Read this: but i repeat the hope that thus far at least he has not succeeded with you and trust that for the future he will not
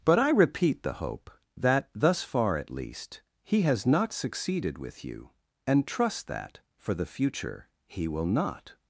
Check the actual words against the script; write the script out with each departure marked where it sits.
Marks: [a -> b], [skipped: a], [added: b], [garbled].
but i repeat the hope that thus far at least he has not succeeded with you and trust that for the future he will not